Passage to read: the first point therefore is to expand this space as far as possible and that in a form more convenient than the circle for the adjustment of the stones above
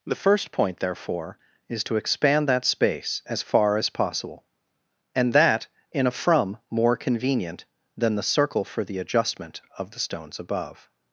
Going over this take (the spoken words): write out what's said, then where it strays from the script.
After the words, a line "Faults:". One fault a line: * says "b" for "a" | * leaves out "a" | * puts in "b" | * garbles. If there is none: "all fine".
the first point therefore is to expand that space as far as possible and that in a from more convenient than the circle for the adjustment of the stones above
Faults:
* says "that" for "this"
* says "from" for "form"